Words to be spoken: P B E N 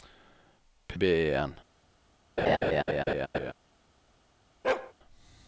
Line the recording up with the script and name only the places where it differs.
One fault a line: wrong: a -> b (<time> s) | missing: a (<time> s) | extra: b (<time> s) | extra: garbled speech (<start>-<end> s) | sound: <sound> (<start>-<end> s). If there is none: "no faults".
sound: laugh (2.4-3.5 s)
sound: bark (4.6-4.9 s)